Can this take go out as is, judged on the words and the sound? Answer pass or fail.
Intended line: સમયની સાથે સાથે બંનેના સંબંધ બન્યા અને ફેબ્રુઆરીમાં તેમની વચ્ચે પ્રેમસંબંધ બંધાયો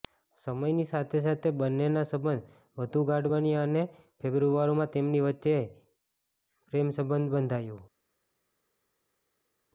fail